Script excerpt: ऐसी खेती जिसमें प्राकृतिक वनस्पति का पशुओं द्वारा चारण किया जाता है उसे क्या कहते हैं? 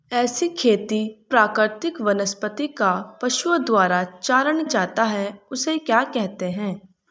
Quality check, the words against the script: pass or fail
fail